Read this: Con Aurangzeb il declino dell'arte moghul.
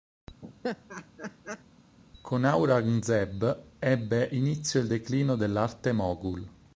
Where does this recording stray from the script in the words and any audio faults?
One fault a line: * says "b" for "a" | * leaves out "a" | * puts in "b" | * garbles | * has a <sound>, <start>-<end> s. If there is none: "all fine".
* has a laugh, 0.4-1.6 s
* puts in "ebbe inizio"